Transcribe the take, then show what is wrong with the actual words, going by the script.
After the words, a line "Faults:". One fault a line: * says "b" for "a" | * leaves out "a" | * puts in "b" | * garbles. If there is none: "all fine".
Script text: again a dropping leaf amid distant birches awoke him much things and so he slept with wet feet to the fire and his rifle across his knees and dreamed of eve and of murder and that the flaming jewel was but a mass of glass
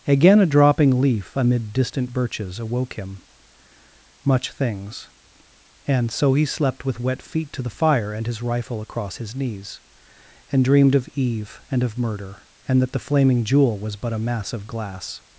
again a dropping leaf amid distant birches awoke him much things and so he slept with wet feet to the fire and his rifle across his knees and dreamed of eve and of murder and that the flaming jewel was but a mass of glass
Faults:
all fine